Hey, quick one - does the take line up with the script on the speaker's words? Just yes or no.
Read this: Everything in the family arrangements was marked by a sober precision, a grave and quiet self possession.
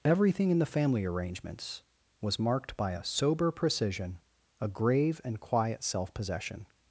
yes